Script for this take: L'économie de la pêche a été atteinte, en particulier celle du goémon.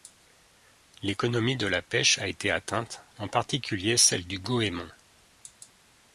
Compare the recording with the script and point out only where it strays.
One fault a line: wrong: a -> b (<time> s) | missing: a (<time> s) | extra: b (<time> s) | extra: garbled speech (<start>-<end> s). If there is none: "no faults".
no faults